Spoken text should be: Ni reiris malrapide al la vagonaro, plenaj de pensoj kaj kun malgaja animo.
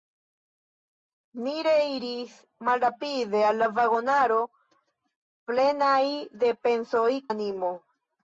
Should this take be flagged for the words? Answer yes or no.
yes